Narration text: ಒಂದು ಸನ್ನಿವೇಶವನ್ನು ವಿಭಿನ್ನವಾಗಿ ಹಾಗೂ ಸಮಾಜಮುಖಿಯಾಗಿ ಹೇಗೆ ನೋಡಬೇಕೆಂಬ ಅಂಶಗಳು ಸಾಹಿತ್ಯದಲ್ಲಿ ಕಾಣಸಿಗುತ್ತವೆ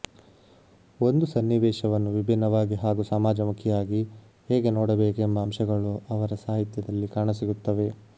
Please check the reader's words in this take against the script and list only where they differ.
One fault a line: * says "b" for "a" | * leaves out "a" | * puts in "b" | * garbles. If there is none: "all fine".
* puts in "ಅವರ"